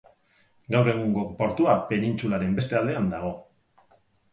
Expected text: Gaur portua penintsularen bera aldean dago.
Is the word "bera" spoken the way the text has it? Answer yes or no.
no